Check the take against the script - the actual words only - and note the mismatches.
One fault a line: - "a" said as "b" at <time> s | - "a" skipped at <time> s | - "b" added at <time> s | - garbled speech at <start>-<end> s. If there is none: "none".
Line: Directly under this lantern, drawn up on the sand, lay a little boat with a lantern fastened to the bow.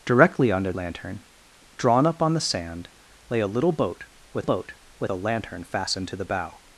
- "this" skipped at 0.7 s
- "boat with" added at 4.4 s